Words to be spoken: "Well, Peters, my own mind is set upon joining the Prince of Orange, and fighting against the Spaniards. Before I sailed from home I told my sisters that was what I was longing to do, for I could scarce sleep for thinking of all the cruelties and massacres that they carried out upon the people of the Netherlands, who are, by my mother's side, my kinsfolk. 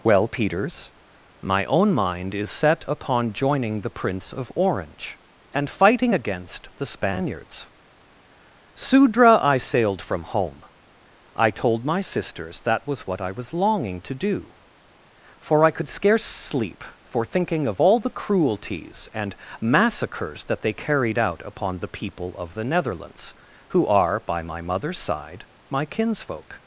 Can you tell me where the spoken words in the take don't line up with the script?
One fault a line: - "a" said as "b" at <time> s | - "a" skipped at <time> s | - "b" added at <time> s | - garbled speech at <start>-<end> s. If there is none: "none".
- "Before" said as "Sudra" at 8.7 s